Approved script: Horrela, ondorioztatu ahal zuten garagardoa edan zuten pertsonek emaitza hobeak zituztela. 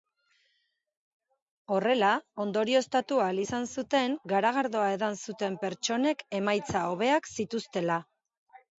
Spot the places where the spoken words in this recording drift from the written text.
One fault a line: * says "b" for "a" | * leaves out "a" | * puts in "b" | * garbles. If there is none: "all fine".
* puts in "izan"